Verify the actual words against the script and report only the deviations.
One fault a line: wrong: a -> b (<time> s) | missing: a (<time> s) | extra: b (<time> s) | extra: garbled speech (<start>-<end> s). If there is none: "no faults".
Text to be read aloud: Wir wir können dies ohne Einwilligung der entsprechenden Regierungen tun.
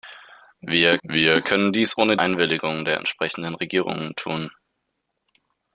no faults